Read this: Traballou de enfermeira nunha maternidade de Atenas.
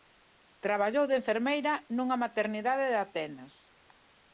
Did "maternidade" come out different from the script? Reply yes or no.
no